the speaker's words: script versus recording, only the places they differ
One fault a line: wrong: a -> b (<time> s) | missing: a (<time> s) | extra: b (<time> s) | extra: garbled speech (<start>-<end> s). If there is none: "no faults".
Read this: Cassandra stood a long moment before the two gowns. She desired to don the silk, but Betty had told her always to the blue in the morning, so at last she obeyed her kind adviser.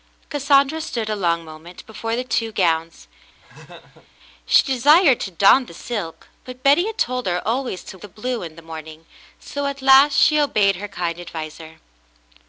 no faults